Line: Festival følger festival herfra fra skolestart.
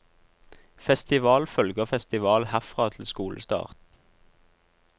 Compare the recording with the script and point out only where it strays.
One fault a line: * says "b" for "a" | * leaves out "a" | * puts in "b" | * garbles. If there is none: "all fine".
* says "til" for "fra"